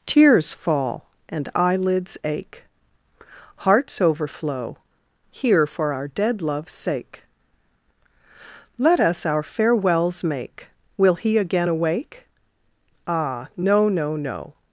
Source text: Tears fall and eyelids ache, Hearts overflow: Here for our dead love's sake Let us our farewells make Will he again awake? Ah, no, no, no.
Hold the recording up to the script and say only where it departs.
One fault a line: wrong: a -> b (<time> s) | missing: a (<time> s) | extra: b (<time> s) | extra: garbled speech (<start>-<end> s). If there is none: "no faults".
no faults